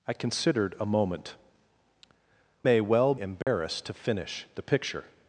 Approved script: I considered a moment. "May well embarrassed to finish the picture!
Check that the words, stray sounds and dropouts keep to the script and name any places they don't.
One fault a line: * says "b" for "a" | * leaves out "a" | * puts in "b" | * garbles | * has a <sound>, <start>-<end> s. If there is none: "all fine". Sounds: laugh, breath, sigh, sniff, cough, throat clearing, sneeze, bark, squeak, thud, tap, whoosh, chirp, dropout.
* has a dropout, 3.4-3.5 s